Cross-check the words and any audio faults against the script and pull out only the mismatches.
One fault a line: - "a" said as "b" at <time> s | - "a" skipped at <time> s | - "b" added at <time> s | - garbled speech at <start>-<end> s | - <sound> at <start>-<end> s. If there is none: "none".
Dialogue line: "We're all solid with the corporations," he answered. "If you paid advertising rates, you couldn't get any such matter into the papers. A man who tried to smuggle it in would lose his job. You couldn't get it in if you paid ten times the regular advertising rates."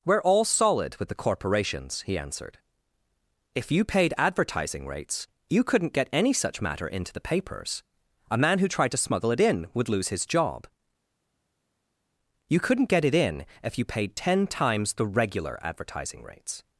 none